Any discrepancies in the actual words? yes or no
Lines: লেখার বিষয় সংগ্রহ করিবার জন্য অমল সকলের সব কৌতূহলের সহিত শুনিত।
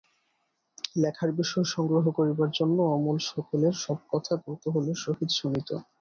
yes